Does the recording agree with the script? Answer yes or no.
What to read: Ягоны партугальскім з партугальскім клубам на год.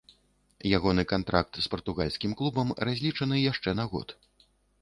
no